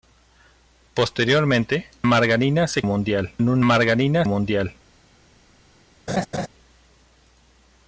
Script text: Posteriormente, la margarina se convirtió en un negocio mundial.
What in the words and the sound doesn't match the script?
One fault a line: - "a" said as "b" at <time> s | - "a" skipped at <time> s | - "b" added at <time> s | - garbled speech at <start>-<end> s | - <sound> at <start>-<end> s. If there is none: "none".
- "la" skipped at 1.9 s
- "convirtió" said as "mundial" at 2.8 s
- "negocio" said as "margarina" at 3.6 s
- laugh at 6.1-6.5 s